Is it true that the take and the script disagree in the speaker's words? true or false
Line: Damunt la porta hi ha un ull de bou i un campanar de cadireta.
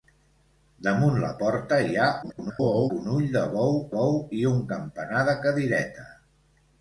true